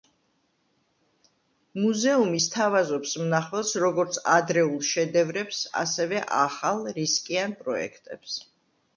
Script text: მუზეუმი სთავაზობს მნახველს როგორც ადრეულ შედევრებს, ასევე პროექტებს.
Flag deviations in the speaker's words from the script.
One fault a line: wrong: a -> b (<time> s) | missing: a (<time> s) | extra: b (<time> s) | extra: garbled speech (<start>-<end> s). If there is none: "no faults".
extra: ახალ რისკიან (6.4 s)